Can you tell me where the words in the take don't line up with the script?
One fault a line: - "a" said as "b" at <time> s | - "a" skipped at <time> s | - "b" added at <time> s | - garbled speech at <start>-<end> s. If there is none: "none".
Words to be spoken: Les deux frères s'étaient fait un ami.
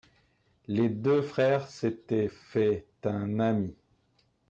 none